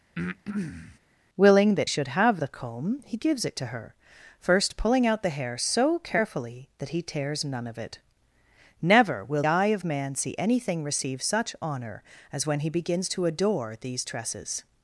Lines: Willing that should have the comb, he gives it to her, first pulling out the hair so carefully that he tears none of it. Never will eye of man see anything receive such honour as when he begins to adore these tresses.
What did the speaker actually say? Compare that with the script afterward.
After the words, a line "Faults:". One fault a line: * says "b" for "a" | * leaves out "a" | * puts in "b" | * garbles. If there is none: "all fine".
Willing that should have the comb, he gives it to her, first pulling out the hair so carefully that he tears none of it. Never will eye of man see anything receive such honour as when he begins to adore these tresses.
Faults:
all fine